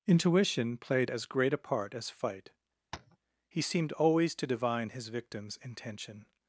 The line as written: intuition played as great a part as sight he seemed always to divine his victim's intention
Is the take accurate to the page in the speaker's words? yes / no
no